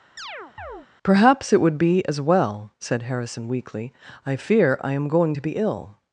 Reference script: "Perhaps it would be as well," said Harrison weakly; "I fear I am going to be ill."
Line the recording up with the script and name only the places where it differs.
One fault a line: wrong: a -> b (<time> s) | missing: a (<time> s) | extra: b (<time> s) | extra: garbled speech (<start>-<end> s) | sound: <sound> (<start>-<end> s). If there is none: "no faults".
sound: chirp (0.2-0.9 s)